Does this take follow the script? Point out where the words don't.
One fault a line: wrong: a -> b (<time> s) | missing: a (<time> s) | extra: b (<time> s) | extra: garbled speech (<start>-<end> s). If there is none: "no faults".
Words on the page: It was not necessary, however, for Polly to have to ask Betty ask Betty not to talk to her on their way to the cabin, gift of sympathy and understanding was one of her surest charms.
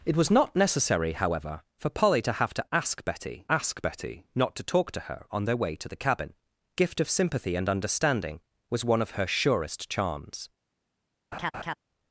no faults